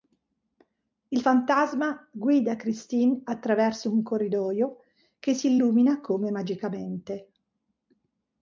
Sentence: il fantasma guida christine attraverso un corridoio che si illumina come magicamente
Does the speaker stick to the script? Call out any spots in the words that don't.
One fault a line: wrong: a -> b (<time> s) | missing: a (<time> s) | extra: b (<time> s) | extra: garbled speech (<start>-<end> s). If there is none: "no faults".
no faults